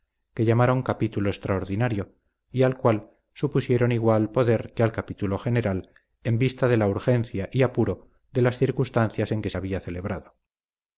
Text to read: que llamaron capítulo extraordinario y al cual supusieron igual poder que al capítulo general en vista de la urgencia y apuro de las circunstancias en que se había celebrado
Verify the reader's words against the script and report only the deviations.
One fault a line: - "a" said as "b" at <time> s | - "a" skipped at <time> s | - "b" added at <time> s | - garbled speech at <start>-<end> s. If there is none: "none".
none